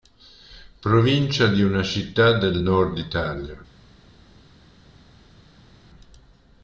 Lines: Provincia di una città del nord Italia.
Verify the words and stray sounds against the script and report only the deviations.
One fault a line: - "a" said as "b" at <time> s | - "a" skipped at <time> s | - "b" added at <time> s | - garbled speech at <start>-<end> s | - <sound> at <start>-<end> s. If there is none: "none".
none